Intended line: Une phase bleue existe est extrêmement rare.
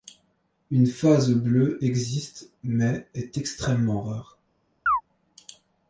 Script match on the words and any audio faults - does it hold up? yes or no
no